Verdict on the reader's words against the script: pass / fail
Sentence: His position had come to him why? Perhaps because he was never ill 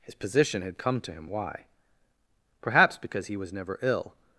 pass